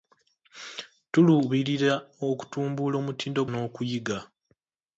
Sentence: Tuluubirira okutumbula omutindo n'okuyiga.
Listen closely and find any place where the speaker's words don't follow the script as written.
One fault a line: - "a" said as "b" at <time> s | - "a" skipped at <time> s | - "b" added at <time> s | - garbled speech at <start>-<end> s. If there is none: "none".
none